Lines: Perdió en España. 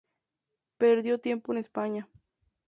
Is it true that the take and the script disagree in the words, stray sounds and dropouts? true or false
true